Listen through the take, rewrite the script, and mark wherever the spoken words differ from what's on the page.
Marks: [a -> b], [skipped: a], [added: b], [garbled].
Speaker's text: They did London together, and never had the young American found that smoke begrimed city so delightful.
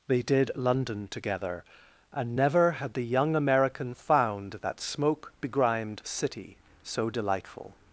They did London together, and never had the young American found that smoke begrimed city so delightful.